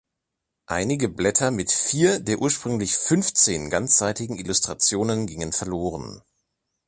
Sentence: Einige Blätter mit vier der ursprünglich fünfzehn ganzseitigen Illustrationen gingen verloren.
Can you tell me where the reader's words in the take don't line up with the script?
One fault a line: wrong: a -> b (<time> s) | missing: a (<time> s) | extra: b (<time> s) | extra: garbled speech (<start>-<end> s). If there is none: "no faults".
no faults